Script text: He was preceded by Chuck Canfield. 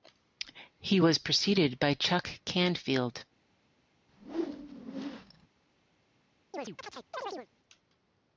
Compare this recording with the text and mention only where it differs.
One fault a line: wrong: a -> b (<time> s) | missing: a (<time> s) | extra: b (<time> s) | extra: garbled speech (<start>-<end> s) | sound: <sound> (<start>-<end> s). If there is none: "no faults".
sound: whoosh (4.1-5.5 s)
sound: chirp (6.5-7.5 s)